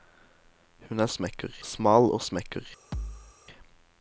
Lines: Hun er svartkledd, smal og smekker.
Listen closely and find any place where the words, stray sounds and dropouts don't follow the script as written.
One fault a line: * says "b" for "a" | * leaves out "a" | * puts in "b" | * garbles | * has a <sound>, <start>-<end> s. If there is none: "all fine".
* says "smekker" for "svartkledd"
* has a thud, 2.9-3.4 s